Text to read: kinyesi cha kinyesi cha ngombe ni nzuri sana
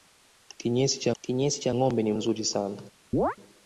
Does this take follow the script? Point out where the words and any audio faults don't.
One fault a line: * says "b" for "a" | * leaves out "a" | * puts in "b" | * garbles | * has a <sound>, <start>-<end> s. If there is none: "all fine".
* has a chirp, 3.1-3.4 s